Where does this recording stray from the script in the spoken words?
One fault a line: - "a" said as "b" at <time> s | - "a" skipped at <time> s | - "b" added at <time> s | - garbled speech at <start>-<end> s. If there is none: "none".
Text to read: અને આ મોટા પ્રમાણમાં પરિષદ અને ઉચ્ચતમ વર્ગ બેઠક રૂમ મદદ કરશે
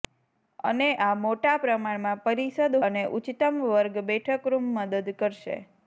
none